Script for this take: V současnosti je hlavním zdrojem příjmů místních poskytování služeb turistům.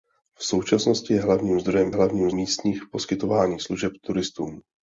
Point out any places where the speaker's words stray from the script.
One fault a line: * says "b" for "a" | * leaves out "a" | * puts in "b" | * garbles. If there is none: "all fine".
* says "hlavním" for "příjmů"